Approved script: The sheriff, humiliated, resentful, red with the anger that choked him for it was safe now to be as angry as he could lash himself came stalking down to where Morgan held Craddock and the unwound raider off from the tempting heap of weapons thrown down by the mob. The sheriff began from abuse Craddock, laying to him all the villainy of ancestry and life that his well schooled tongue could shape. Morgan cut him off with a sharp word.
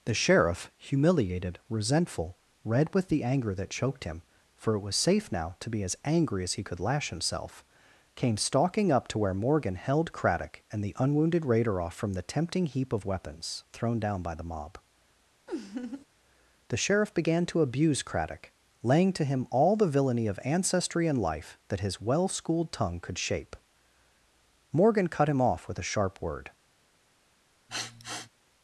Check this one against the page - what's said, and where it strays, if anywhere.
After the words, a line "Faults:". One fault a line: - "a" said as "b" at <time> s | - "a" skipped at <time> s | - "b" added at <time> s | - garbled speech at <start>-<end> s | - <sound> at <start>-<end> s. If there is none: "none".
The sheriff, humiliated, resentful, red with the anger that choked him for it was safe now to be as angry as he could lash himself came stalking up to where Morgan held Craddock and the unwounded raider off from the tempting heap of weapons thrown down by the mob. The sheriff began to abuse Craddock, laying to him all the villainy of ancestry and life that his well schooled tongue could shape. Morgan cut him off with a sharp word.
Faults:
- "down" said as "up" at 8.9 s
- "unwound" said as "unwounded" at 11.0 s
- laugh at 15.5-16.1 s
- "from" said as "to" at 17.5 s
- sniff at 27.7-28.3 s